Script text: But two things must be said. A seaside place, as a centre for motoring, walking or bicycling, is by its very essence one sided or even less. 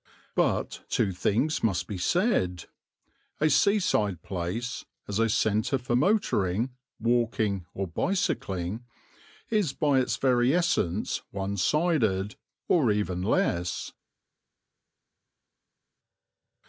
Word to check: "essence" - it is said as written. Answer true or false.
true